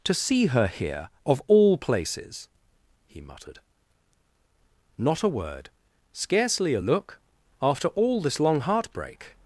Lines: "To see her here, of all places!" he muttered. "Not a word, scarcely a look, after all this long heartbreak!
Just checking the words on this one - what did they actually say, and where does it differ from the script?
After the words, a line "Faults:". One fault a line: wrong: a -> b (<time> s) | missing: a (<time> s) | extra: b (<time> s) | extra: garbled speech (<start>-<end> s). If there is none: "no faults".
"To see her here, of all places!" he muttered. "Not a word, scarcely a look, after all this long heartbreak!
Faults:
no faults